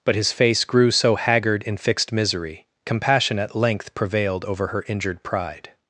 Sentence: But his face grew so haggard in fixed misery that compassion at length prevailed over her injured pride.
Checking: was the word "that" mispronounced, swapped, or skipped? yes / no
yes